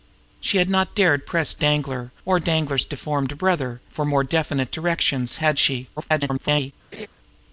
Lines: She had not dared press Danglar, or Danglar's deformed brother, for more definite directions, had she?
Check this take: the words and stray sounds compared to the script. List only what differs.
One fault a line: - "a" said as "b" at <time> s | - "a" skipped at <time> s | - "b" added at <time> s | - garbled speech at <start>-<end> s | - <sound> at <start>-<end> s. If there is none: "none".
- garbled speech at 6.0-6.7 s
- laugh at 6.9-7.1 s